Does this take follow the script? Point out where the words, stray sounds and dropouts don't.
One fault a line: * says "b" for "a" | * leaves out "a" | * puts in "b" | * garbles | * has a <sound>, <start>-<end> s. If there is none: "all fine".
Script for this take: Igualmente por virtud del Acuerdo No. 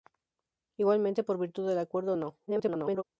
* garbles